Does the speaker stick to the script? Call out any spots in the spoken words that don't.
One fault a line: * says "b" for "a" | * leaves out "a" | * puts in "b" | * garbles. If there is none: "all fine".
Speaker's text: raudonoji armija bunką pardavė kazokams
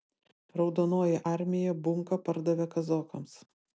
all fine